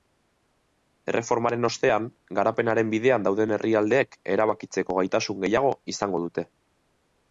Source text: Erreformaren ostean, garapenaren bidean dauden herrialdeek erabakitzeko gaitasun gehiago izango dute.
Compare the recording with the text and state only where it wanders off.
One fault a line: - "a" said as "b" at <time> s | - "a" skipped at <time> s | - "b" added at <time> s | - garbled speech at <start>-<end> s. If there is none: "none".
none